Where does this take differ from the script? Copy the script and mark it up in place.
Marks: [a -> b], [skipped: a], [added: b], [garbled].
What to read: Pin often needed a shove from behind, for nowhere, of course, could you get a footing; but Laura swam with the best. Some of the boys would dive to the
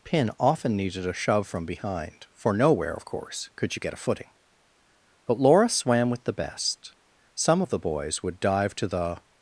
Pin often needed a shove from behind, for nowhere, of course, could you get a footing; but Laura swam with the best. Some of the boys would dive to the